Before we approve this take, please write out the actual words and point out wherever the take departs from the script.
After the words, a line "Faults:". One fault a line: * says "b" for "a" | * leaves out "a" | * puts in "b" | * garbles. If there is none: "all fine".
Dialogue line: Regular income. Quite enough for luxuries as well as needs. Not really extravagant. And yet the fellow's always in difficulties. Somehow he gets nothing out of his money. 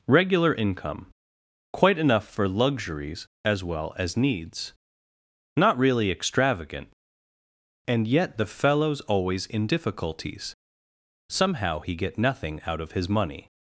Regular income. Quite enough for luxuries as well as needs. Not really extravagant. And yet the fellow's always in difficulties. Somehow he get nothing out of his money.
Faults:
* says "get" for "gets"